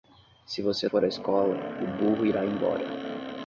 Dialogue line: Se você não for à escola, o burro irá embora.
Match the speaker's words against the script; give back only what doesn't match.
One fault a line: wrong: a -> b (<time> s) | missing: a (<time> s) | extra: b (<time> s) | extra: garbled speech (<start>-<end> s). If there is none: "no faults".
missing: não (0.9 s)